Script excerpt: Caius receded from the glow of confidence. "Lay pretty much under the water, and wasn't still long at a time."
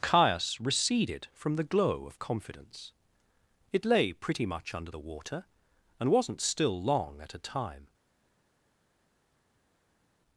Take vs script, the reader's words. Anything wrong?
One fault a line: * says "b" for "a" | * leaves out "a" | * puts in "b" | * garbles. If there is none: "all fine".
* puts in "It"